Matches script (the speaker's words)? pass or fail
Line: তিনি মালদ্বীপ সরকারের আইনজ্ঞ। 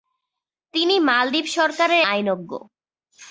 pass